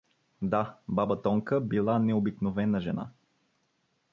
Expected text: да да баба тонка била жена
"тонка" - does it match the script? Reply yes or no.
yes